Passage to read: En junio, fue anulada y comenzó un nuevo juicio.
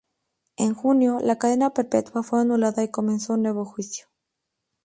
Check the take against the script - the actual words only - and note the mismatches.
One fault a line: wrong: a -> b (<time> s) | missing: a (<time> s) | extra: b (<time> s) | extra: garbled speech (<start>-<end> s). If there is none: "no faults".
extra: la cadena perpetua (1.2 s)